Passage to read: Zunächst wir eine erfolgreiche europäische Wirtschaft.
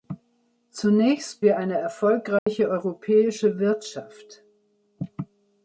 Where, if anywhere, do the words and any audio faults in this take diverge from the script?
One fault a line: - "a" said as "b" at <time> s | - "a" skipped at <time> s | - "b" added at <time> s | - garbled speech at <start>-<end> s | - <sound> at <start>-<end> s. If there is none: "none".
- dropout at 2.4-2.5 s